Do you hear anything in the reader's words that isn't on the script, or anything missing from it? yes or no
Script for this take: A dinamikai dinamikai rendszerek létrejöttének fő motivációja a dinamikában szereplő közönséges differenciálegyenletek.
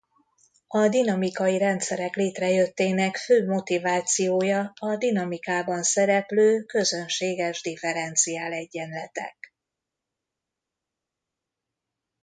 yes